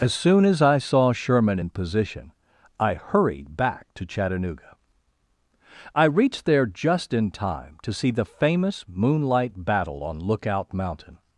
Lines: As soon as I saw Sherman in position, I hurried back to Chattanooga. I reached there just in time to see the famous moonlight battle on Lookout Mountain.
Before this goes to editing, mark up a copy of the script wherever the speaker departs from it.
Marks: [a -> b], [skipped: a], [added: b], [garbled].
As soon as I saw Sherman in position, I hurried back to Chattanooga. I reached there just in time to see the famous moonlight battle on Lookout Mountain.